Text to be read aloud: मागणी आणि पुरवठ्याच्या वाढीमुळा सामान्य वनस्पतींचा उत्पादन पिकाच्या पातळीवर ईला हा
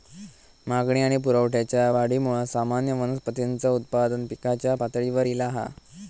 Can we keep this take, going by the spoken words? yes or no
yes